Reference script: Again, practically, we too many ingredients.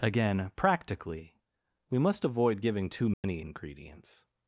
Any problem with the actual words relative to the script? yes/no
yes